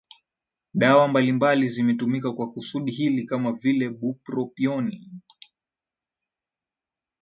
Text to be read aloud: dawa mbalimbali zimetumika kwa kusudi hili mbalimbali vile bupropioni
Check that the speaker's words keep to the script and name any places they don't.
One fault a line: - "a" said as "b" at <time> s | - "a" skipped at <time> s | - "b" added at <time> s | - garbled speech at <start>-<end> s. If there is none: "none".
- "mbalimbali" said as "kama" at 3.2 s